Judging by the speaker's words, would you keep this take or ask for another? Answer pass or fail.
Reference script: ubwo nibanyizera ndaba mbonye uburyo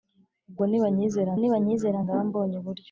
fail